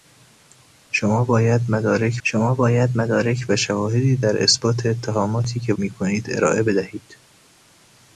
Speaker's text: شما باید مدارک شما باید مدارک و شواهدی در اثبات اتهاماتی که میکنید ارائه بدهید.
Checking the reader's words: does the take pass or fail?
pass